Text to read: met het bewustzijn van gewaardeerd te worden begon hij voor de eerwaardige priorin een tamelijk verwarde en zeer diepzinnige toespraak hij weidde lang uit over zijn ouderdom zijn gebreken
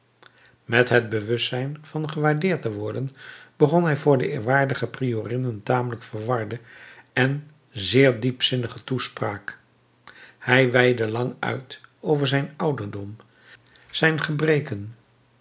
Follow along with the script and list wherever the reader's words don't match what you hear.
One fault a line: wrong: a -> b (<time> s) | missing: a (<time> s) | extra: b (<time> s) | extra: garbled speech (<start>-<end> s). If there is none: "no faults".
no faults